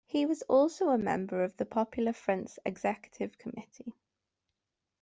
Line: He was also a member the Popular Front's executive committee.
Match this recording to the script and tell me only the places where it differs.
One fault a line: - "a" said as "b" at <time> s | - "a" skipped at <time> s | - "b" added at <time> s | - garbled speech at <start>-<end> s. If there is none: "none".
- "of" added at 1.4 s